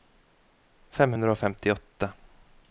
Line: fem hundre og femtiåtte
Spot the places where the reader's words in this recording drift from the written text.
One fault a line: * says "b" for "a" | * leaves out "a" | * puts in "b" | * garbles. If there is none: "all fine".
all fine